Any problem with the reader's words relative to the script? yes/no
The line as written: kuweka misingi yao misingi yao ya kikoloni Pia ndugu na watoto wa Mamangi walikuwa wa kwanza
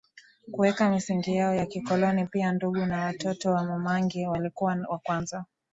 yes